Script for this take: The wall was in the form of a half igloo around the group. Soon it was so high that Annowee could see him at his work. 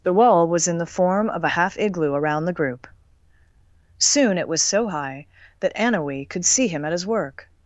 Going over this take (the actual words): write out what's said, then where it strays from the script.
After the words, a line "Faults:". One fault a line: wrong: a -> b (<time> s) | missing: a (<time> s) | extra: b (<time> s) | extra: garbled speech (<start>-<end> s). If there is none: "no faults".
The wall was in the form of a half igloo around the group. Soon it was so high that Annowee could see him at his work.
Faults:
no faults